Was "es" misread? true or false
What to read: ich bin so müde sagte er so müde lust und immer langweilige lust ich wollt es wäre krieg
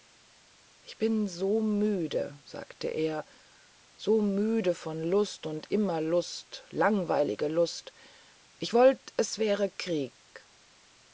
false